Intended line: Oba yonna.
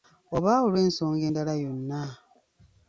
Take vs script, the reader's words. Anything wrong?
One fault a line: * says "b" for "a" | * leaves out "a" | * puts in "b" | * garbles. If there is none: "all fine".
* puts in "olw'ensonga endala"